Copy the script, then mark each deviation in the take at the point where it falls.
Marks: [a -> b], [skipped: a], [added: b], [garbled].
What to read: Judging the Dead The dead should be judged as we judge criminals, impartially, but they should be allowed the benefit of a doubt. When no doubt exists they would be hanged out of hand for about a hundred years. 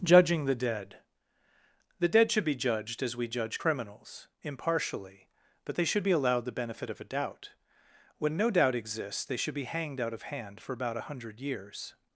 Judging the Dead The dead should be judged as we judge criminals, impartially, but they should be allowed the benefit of a doubt. When no doubt exists they [would -> should] be hanged out of hand for about a hundred years.